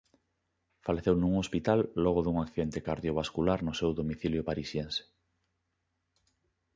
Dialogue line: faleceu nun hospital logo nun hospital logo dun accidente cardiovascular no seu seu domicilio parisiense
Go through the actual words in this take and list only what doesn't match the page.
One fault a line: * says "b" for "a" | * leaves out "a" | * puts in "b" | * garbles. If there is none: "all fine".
* leaves out "nun hospital logo"
* leaves out "seu"